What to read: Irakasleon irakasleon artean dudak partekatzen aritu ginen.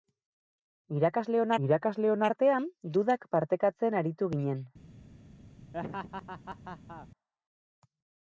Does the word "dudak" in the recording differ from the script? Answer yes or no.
no